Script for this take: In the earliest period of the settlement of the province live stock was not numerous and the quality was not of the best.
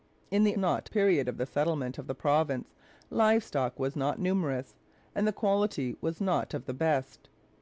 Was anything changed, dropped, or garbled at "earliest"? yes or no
yes